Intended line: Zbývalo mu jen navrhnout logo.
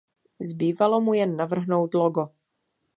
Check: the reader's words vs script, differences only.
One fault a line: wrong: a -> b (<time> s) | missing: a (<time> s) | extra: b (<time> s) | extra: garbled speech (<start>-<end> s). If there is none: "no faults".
no faults